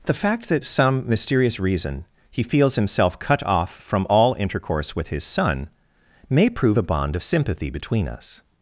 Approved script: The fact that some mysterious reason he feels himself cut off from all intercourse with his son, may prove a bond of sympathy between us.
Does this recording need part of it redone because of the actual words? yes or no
no